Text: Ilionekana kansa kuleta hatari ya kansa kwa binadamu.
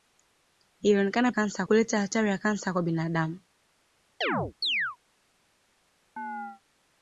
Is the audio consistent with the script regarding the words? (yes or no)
yes